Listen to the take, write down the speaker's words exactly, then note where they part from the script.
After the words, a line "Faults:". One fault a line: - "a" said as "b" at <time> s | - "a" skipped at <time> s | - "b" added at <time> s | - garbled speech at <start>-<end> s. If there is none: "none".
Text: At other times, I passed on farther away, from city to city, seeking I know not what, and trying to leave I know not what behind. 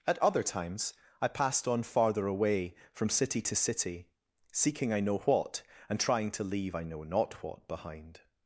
At other times, I passed on farther away, from city to city, seeking I know what, and trying to leave I know not what behind.
Faults:
- "not" skipped at 5.2 s